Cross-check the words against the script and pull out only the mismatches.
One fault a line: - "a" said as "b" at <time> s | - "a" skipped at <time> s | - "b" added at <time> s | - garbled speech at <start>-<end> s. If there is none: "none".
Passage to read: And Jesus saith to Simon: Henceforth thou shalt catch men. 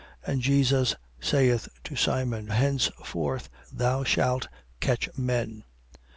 none